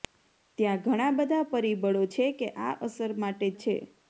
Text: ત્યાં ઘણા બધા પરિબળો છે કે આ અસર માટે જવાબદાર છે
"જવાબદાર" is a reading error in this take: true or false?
true